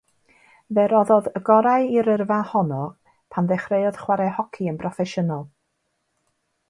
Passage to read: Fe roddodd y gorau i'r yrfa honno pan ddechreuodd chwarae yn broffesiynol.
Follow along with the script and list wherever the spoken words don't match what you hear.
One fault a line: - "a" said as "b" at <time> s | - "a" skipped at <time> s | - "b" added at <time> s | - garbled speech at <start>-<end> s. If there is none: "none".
- "hoci" added at 4.4 s